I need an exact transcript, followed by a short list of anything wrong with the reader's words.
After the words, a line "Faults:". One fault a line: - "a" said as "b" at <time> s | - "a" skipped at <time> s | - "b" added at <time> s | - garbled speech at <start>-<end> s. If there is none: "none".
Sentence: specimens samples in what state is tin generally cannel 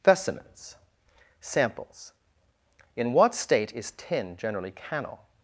specimens samples in what state is tin generally cannel
Faults:
none